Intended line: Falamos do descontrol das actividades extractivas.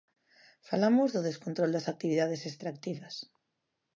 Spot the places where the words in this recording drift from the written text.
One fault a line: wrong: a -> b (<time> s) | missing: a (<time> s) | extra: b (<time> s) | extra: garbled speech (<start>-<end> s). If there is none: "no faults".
no faults